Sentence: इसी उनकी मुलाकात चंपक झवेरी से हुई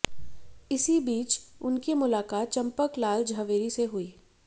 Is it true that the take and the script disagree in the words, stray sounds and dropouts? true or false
true